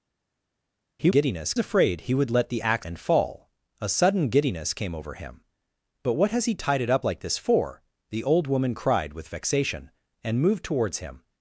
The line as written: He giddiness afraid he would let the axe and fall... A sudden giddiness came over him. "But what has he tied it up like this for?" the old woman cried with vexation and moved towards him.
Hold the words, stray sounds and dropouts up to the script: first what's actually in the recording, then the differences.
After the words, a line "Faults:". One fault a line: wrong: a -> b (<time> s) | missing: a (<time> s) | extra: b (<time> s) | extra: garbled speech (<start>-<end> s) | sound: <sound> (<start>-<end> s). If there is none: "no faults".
He giddiness afraid he would let the axe and fall... A sudden giddiness came over him. "But what has he tied it up like this for?" the old woman cried with vexation and moved towards him.
Faults:
no faults